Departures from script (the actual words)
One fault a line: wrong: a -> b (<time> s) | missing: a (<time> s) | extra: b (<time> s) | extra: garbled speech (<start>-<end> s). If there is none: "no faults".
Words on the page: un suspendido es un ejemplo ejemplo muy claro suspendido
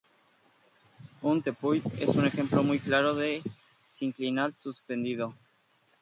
wrong: suspendido -> tepuy (1.4 s)
missing: ejemplo (2.6 s)
extra: de sinclinal (3.2 s)